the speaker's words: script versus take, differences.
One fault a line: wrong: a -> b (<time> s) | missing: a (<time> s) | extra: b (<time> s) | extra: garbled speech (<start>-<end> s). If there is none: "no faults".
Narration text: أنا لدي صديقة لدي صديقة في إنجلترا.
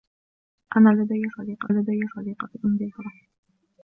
no faults